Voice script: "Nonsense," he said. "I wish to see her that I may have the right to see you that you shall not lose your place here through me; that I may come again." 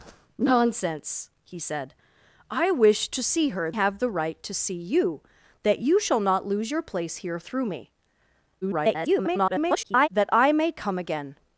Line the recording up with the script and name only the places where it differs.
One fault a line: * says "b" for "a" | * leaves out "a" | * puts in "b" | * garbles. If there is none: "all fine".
* leaves out "that I may"
* garbles